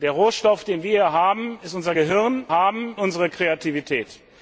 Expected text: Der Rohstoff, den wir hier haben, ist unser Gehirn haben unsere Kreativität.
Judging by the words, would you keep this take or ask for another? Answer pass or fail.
pass